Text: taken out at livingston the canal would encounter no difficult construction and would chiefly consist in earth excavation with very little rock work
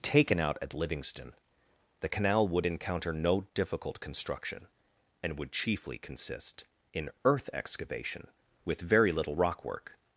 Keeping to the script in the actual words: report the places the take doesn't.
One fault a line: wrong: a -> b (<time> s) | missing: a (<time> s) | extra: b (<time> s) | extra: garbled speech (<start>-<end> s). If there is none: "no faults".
no faults